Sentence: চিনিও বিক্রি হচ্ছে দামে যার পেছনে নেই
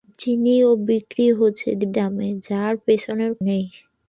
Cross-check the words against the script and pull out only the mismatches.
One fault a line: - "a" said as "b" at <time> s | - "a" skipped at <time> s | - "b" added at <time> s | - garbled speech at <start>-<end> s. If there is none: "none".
none